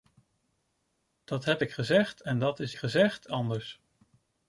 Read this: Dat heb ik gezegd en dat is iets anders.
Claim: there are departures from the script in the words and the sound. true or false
true